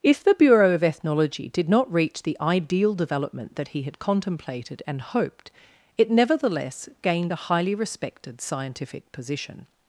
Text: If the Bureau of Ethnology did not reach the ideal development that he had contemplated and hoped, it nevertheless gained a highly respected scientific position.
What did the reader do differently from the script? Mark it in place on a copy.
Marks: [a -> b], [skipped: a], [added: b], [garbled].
If the Bureau of Ethnology did not reach the ideal development that he had contemplated and hoped, it nevertheless gained a highly respected scientific position.